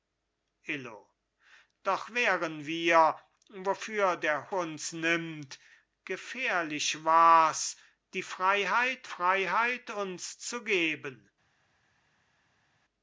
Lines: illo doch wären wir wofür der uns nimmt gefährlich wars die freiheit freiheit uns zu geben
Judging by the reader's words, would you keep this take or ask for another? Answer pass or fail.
pass